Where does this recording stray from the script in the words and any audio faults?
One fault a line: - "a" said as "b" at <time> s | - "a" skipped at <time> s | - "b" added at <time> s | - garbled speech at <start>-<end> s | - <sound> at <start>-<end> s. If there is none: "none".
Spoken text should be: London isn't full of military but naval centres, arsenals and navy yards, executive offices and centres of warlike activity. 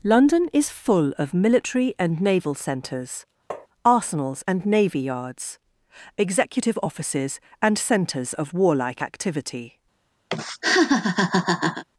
- "isn't" said as "is" at 0.5 s
- "but" said as "and" at 2.0 s
- tap at 3.5-3.7 s
- laugh at 10.3-11.8 s